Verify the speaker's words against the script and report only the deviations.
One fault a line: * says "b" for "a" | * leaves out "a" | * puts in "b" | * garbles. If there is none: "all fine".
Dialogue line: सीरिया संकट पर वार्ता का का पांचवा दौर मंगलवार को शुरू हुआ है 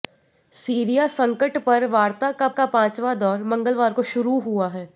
all fine